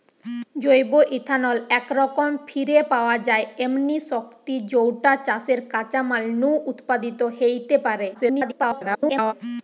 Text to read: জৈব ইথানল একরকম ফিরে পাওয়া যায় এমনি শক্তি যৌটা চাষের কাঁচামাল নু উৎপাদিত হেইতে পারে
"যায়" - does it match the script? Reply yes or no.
yes